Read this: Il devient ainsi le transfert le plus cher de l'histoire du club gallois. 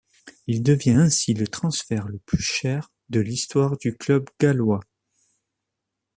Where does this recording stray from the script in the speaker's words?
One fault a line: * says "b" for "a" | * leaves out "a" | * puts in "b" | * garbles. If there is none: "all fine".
all fine